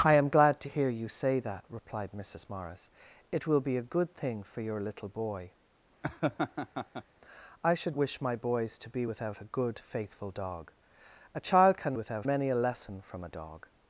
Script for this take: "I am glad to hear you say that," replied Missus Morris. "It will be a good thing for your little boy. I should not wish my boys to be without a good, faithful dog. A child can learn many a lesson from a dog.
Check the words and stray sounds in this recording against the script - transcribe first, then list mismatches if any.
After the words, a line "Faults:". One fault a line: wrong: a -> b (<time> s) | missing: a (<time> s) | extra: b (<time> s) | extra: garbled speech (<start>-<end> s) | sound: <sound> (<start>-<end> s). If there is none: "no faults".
"I am glad to hear you say that," replied Missus Morris. "It will be a good thing for your little boy. I should wish my boys to be without a good, faithful dog. A child can without many a lesson from a dog.
Faults:
sound: laugh (6.0-7.0 s)
missing: not (8.0 s)
wrong: learn -> without (11.9 s)